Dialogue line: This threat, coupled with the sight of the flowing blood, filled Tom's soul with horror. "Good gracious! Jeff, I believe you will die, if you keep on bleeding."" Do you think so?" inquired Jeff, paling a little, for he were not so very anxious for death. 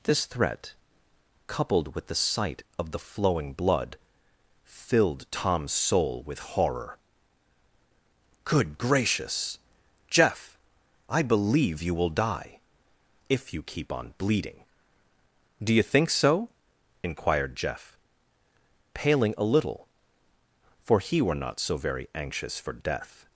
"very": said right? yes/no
yes